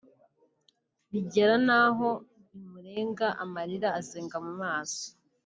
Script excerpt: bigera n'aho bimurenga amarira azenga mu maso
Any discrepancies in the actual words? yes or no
no